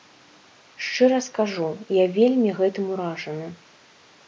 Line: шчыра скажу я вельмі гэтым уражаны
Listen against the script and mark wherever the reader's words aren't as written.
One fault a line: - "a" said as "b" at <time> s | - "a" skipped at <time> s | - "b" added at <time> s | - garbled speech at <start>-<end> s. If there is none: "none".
none